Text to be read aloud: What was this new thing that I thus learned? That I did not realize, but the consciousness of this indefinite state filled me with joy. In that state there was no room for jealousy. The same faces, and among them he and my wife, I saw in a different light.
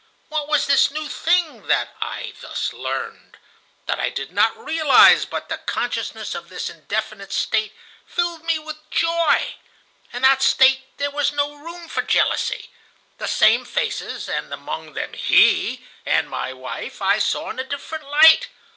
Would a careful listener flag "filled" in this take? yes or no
no